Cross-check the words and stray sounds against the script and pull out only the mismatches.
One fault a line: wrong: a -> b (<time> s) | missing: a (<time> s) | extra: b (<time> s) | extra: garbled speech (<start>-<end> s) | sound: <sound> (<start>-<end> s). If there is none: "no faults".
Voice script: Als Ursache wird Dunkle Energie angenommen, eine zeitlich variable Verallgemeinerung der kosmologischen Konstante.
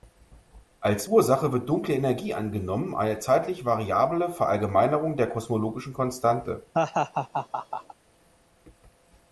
sound: laugh (6.7-7.9 s)